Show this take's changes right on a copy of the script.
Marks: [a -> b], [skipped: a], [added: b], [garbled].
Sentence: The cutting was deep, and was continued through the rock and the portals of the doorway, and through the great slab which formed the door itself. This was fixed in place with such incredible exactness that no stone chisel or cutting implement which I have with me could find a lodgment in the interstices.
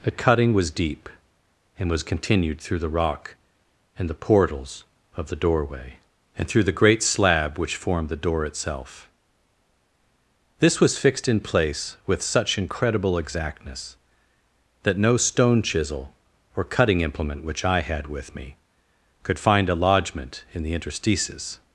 The cutting was deep, and was continued through the rock and the portals of the doorway, and through the great slab which formed the door itself. This was fixed in place with such incredible exactness that no stone chisel or cutting implement which I [have -> had] with me could find a lodgment in the interstices.